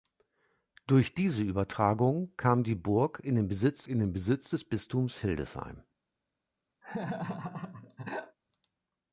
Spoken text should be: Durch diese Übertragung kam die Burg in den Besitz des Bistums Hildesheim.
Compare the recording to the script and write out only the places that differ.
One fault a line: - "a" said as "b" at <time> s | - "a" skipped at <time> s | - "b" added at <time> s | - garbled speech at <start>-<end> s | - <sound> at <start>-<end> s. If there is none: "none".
- "in den Besitz" added at 3.9 s
- laugh at 6.8-8.4 s